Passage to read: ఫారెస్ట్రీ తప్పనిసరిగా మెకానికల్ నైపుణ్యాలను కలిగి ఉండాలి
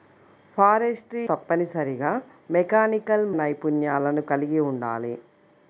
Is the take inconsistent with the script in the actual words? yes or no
no